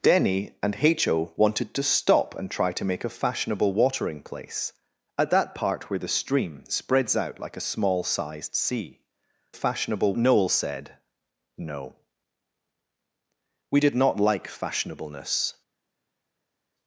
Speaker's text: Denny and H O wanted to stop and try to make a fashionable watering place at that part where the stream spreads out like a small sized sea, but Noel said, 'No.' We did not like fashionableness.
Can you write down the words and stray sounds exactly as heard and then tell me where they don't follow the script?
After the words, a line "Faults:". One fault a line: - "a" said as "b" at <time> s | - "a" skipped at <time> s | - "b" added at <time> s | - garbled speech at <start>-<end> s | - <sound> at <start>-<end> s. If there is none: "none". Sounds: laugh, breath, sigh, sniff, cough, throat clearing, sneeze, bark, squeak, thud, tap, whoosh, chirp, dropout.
Denny and H O wanted to stop and try to make a fashionable watering place at that part where the stream spreads out like a small sized sea, fashionable Noel said, 'No.' We did not like fashionableness.
Faults:
- "but" said as "fashionable" at 9.5 s